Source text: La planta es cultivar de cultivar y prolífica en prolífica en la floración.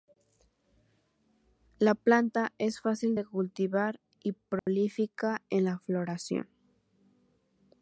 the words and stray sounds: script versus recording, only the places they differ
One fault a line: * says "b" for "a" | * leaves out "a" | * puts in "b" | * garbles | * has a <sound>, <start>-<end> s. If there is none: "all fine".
* says "fácil" for "cultivar"
* has a dropout, 4.6-4.7 s
* leaves out "prolífica en"